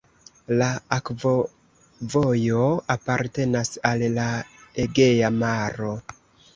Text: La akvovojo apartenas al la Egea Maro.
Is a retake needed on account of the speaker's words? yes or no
no